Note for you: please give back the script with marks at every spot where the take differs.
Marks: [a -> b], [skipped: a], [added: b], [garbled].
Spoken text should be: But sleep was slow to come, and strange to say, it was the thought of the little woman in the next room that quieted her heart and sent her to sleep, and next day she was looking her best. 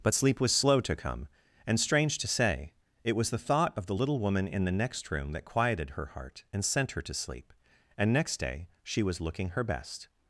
But sleep was slow to come, and strange to say, it was the thought of the little woman in the next room that quieted her heart and sent her to sleep, and next day she was looking her best.